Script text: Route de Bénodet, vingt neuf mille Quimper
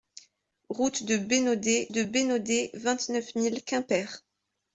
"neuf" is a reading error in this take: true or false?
false